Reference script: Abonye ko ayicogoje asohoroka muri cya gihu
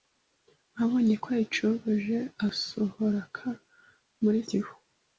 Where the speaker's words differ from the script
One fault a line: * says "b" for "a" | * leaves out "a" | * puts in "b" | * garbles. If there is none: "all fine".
* leaves out "cya"